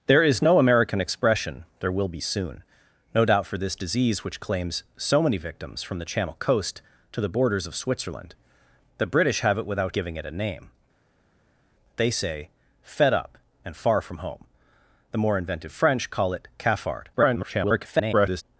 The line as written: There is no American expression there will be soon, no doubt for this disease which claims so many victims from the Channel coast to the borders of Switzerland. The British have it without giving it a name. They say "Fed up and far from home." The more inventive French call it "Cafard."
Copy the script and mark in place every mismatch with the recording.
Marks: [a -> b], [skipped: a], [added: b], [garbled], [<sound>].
There is no American expression there will be soon, no doubt for this disease which claims so many victims from the Channel coast to the borders of Switzerland. The British have it without giving it a name. They say "Fed up and far from home." The more inventive French call it "Cafard." [garbled]